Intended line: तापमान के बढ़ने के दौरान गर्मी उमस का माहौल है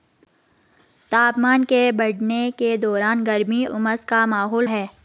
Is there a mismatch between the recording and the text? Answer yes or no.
no